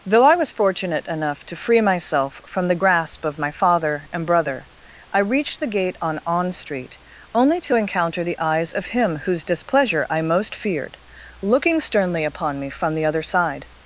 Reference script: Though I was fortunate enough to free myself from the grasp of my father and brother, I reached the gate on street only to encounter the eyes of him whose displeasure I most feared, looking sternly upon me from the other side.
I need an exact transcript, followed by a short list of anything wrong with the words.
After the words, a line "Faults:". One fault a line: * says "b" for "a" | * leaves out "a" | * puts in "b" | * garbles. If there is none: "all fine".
Though I was fortunate enough to free myself from the grasp of my father and brother, I reached the gate on on street only to encounter the eyes of him whose displeasure I most feared, looking sternly upon me from the other side.
Faults:
* puts in "on"